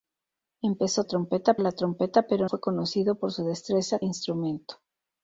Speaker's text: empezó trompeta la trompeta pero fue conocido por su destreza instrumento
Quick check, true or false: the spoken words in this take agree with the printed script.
true